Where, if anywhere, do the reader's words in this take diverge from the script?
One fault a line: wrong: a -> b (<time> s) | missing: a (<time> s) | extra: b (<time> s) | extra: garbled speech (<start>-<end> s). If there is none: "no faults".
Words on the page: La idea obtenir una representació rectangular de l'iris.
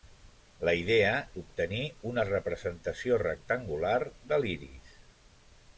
no faults